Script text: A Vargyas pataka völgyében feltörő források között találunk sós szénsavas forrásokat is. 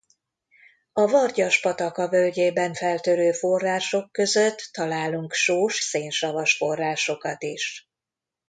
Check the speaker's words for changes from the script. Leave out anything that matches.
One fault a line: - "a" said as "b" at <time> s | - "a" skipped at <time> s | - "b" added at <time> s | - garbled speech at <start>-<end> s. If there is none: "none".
none